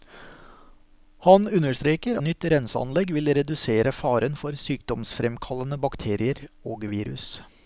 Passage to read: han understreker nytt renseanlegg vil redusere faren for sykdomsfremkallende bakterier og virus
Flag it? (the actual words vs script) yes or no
no